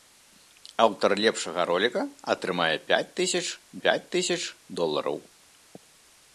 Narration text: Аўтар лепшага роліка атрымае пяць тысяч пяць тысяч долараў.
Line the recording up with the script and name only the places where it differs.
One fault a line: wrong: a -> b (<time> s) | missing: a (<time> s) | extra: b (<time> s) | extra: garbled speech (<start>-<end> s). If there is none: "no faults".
no faults